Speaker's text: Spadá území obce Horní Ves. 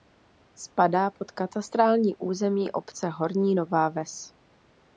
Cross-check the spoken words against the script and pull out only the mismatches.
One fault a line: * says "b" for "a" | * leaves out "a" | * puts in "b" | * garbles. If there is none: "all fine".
* puts in "pod katastrální"
* puts in "Nová"